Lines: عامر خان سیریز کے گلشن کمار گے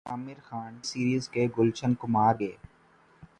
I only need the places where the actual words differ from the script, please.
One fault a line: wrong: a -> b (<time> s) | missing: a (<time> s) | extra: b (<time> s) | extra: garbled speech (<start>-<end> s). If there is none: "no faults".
no faults